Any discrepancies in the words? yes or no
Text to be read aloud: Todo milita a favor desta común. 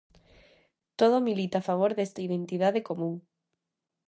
yes